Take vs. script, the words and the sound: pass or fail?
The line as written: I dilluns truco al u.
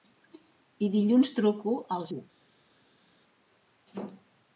pass